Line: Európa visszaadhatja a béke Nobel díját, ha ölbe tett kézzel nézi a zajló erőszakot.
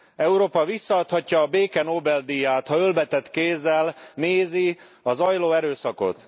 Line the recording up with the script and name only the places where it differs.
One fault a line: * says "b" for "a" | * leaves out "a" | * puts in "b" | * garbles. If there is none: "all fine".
all fine